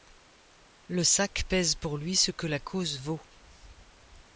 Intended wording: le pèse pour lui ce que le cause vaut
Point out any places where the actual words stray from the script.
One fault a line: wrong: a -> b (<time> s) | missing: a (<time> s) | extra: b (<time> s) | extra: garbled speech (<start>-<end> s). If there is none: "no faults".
extra: sac (1.0 s)
wrong: le -> la (2.5 s)